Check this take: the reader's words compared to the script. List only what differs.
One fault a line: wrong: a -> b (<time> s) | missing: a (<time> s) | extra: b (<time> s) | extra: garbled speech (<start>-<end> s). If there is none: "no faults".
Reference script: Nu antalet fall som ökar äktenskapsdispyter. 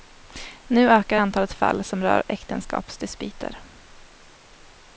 extra: ökar (0.9 s)
wrong: ökar -> rör (2.0 s)